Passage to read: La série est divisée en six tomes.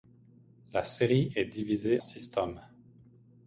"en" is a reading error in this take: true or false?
true